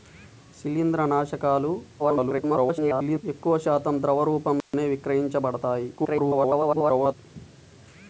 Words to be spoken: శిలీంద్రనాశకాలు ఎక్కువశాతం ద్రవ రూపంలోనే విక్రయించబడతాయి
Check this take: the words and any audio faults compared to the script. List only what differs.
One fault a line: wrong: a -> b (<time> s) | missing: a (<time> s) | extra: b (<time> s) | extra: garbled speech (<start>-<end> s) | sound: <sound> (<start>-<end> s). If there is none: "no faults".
extra: garbled speech (2.0-3.2 s)
sound: dropout (4.6-4.7 s)
extra: garbled speech (6.0-7.1 s)